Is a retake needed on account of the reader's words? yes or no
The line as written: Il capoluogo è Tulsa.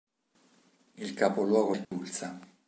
no